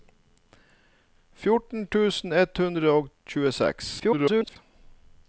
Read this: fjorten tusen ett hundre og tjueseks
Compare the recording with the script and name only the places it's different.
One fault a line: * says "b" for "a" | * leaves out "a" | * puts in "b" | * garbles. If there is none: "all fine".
* garbles